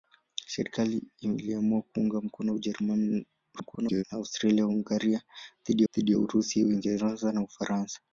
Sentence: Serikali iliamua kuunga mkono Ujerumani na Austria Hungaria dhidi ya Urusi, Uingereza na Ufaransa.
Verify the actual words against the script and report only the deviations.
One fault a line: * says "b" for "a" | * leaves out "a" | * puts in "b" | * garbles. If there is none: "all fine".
* garbles
* puts in "dhidi"